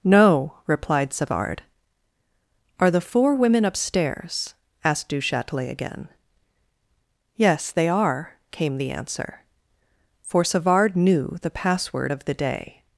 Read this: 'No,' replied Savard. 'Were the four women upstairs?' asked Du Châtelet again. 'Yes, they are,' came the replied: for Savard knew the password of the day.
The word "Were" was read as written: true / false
false